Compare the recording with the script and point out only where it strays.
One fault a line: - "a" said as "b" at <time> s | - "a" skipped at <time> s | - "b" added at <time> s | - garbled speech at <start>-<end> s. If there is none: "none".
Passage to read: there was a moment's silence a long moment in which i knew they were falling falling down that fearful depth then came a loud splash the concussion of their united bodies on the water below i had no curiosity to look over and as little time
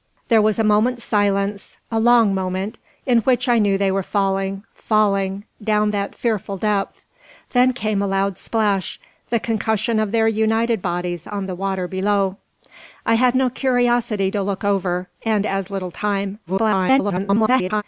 - garbled speech at 16.5-17.8 s